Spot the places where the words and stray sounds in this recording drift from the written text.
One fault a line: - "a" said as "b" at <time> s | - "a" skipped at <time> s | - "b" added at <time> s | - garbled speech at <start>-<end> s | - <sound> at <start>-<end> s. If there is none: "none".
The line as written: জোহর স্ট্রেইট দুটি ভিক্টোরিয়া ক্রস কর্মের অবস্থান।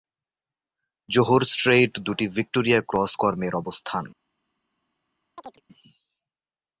- chirp at 5.4-5.6 s